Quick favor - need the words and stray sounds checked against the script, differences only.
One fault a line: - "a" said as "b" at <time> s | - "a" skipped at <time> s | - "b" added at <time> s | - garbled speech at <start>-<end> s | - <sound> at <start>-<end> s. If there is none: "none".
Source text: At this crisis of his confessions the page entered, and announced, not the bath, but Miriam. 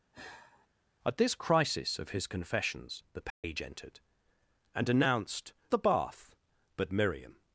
- sigh at 0.1-0.7 s
- dropout at 3.3-3.4 s
- "not" skipped at 5.5 s